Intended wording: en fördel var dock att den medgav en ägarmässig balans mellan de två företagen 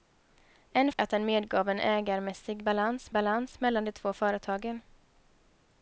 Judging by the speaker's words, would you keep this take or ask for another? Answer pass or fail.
fail